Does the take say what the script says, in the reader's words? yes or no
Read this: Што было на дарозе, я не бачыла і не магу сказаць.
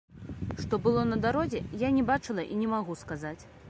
yes